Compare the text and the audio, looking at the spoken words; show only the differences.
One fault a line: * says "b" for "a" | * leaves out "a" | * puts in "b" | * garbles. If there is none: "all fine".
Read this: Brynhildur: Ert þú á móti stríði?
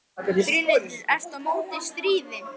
all fine